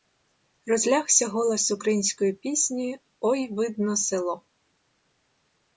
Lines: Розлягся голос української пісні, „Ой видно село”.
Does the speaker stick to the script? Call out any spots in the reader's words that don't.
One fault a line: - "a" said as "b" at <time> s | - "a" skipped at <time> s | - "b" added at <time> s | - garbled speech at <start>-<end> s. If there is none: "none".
none